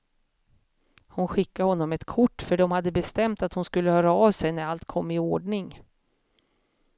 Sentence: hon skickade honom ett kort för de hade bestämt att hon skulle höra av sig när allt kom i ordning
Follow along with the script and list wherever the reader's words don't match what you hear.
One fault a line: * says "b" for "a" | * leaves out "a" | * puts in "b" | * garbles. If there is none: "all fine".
all fine